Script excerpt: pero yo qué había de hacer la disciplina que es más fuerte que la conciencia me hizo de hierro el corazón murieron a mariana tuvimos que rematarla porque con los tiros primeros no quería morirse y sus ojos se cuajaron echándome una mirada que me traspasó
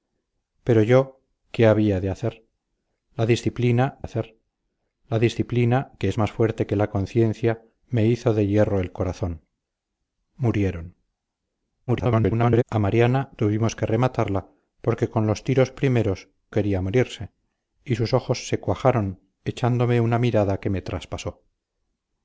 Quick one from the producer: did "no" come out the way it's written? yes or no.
no